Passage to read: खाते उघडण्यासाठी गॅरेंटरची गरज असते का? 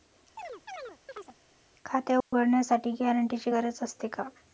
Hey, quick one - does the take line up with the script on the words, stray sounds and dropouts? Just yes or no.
no